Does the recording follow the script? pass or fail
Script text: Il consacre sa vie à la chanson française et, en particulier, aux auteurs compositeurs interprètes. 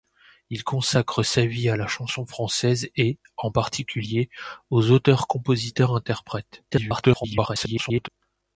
fail